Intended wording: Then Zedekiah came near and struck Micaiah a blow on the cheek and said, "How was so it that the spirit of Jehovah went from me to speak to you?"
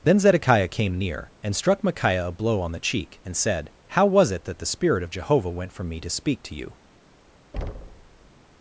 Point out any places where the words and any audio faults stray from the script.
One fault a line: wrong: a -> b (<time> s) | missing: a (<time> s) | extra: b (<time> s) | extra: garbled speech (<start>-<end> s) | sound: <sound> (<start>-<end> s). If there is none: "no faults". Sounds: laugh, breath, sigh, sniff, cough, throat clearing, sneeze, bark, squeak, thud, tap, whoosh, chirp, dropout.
missing: so (4.3 s)
sound: thud (7.5-8.3 s)